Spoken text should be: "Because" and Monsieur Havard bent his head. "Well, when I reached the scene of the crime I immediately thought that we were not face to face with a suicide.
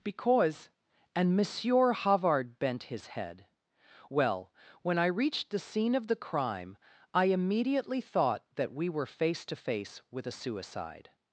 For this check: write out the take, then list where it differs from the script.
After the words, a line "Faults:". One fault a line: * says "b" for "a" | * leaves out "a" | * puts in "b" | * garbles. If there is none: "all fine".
"Because" and Monsieur Havard bent his head. "Well, when I reached the scene of the crime I immediately thought that we were face to face with a suicide.
Faults:
* leaves out "not"